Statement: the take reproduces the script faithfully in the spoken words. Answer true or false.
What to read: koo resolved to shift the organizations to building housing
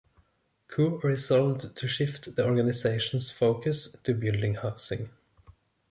false